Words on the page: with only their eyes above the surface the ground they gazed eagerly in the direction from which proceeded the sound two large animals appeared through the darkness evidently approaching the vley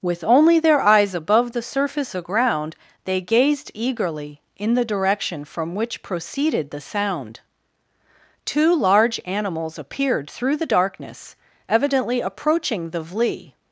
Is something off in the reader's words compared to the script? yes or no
no